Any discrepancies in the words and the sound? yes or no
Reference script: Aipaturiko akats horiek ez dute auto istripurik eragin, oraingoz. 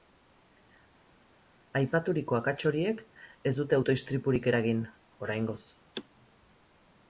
no